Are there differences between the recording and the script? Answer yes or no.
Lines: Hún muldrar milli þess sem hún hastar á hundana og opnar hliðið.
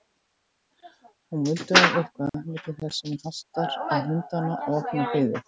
yes